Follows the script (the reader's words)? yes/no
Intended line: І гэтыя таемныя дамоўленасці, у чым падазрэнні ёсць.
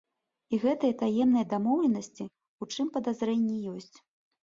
yes